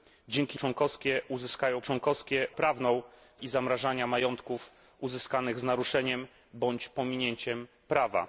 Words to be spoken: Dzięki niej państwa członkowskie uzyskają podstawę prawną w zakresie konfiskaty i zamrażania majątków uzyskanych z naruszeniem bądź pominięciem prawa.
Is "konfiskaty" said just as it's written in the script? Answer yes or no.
no